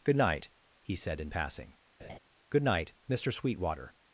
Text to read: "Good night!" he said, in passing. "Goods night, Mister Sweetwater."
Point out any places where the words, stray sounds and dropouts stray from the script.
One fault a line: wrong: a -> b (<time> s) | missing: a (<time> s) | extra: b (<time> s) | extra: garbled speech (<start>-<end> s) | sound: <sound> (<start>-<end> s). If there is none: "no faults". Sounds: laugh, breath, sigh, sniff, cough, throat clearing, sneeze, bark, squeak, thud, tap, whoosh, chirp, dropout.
sound: laugh (2.0-2.2 s)
wrong: Goods -> Good (2.5 s)